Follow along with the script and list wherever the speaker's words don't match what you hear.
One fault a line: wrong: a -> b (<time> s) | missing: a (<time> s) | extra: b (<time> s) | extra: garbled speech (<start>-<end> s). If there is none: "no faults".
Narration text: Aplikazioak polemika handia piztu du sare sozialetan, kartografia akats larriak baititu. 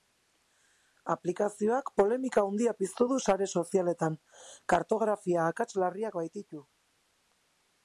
no faults